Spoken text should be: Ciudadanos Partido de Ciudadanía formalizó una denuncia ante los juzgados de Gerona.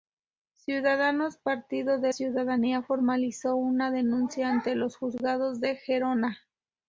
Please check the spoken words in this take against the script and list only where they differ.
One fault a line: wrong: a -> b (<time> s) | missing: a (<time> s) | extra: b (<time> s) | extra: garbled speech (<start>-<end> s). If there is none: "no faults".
no faults